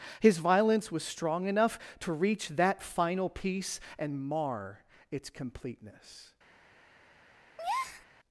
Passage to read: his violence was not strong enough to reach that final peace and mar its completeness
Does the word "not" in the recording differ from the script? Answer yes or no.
yes